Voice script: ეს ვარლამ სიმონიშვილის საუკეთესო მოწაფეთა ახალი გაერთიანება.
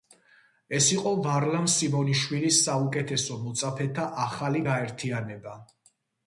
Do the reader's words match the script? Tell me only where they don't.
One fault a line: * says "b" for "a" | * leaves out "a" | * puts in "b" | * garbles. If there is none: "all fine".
* puts in "იყო"